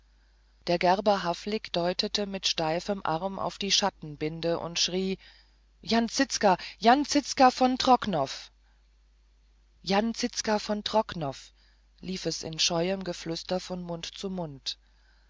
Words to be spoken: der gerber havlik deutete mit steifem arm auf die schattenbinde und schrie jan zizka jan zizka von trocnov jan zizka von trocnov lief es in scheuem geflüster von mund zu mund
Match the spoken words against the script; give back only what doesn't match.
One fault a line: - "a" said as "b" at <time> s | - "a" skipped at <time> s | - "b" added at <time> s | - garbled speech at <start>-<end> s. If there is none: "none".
none